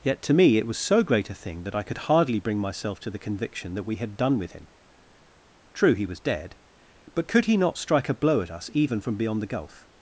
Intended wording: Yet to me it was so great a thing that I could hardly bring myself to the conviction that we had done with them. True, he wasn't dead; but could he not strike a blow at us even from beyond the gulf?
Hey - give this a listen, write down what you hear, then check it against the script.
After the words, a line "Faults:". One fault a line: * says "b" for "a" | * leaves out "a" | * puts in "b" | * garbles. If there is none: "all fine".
Yet to me it was so great a thing that I could hardly bring myself to the conviction that we had done with him. True, he was dead; but could he not strike a blow at us even from beyond the gulf?
Faults:
* says "him" for "them"
* says "was" for "wasn't"